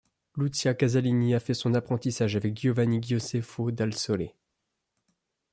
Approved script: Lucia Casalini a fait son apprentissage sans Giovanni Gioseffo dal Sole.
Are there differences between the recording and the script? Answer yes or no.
yes